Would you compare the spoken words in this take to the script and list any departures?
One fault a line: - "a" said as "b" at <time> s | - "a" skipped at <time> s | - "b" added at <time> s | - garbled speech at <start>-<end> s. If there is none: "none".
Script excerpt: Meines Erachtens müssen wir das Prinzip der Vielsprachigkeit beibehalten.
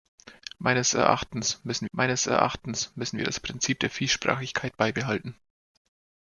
- "meines Erachtens müssen" added at 1.9 s